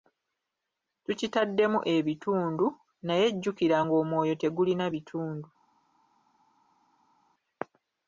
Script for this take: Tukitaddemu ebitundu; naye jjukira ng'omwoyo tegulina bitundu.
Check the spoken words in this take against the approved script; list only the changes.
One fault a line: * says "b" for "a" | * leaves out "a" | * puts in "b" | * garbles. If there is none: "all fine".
all fine